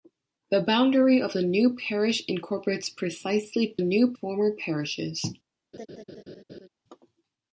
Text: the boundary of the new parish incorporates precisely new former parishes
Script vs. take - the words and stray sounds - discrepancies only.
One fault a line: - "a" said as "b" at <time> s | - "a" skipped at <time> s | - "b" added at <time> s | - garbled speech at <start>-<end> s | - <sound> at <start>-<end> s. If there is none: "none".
- laugh at 5.7-6.7 s